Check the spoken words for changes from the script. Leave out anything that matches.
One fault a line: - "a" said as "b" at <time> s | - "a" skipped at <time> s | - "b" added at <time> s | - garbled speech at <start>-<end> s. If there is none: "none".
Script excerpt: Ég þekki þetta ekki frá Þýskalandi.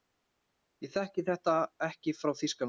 none